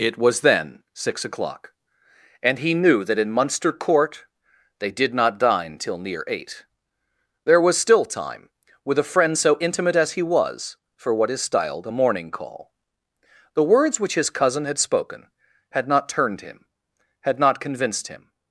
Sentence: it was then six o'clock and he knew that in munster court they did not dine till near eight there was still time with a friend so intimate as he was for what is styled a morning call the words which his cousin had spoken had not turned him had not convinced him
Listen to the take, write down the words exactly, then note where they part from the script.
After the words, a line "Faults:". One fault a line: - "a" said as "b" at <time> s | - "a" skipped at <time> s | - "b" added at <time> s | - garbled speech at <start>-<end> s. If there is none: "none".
it was then six o'clock and he knew that in munster court they did not dine till near eight there was still time with a friend so intimate as he was for what is styled a morning call the words which his cousin had spoken had not turned him had not convinced him
Faults:
none